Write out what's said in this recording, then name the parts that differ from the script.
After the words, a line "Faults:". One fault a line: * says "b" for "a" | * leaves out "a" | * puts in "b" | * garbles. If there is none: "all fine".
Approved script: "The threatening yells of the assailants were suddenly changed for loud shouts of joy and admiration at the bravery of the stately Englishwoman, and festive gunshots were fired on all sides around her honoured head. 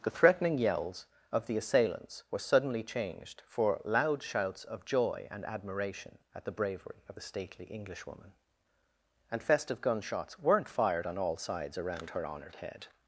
"The threatening yells of the assailants were suddenly changed for loud shouts of joy and admiration at the bravery of the stately Englishwoman, and festive gunshots weren't fired on all sides around her honoured head.
Faults:
* says "weren't" for "were"